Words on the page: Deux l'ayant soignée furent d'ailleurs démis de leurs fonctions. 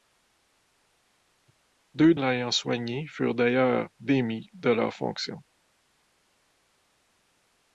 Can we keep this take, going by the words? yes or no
yes